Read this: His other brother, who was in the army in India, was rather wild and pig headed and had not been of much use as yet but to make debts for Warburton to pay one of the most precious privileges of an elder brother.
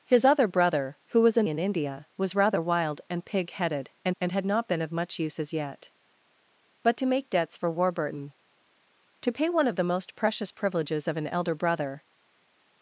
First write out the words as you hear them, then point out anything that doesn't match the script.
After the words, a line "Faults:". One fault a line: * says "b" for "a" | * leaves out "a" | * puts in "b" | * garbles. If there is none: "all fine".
His other brother, who was in in India, was rather wild and pig headed and and had not been of much use as yet but to make debts for Warburton to pay one of the most precious privileges of an elder brother.
Faults:
* leaves out "the army"
* puts in "and"